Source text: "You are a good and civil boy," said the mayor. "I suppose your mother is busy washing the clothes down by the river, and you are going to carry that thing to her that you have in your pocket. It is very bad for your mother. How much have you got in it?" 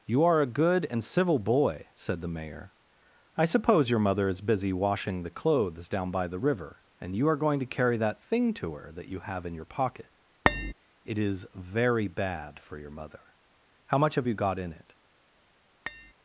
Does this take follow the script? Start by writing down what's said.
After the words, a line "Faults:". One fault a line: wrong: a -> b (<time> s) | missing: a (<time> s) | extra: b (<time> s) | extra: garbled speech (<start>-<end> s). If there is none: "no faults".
"You are a good and civil boy," said the mayor. "I suppose your mother is busy washing the clothes down by the river, and you are going to carry that thing to her that you have in your pocket. It is very bad for your mother. How much have you got in it?"
Faults:
no faults